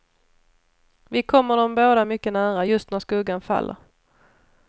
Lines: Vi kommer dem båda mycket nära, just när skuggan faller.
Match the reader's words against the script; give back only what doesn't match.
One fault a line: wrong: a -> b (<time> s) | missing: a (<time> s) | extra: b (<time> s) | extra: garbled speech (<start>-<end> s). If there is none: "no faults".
no faults